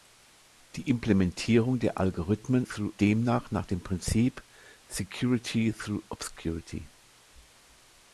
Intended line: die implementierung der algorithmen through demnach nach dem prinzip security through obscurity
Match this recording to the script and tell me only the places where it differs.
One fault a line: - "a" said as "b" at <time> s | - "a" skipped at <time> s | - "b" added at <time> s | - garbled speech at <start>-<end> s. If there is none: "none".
none